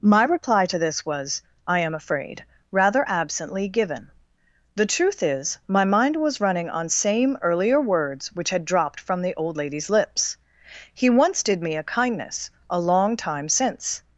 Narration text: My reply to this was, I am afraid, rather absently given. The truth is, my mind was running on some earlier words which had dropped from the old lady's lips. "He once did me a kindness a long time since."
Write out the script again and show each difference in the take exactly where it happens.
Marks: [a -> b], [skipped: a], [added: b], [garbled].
My reply to this was, I am afraid, rather absently given. The truth is, my mind was running on [some -> same] earlier words which had dropped from the old lady's lips. "He once did me a kindness a long time since."